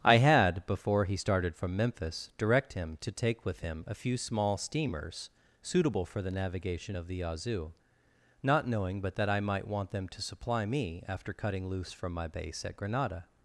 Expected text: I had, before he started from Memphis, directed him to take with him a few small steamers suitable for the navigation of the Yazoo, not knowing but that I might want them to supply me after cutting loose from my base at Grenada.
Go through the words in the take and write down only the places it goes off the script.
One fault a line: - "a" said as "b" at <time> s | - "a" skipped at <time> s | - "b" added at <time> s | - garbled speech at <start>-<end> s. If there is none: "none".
- "directed" said as "direct" at 2.4 s